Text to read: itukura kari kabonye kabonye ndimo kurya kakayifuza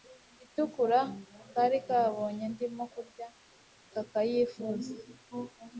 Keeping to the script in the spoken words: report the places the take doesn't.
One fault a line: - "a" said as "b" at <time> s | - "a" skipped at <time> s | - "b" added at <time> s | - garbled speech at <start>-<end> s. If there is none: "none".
- "kabonye" skipped at 2.4 s